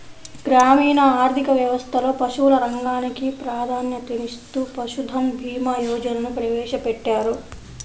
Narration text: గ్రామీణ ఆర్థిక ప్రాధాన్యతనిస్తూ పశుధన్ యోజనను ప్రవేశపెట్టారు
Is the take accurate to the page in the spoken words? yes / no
no